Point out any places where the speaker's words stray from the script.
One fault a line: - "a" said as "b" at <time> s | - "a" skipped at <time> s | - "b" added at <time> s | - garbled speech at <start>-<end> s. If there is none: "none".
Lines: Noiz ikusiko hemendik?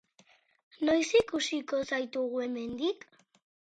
- "zaitugu" added at 1.9 s